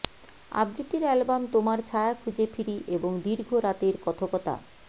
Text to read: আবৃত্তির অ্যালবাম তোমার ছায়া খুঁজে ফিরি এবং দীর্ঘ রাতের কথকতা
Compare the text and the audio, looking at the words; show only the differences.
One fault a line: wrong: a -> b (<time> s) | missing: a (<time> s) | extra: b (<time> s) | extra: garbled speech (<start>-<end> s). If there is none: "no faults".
no faults